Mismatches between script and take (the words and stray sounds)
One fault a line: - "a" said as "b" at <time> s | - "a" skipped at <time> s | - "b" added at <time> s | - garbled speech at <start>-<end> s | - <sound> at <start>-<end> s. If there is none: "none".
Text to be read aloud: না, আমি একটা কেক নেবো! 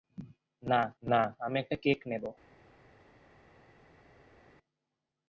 - "না" added at 1.0 s